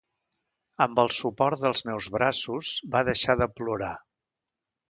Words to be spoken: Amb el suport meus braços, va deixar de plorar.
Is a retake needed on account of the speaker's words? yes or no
yes